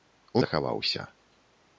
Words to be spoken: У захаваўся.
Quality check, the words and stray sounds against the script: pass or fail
pass